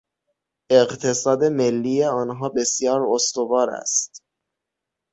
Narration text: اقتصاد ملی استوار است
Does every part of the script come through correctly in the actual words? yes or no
no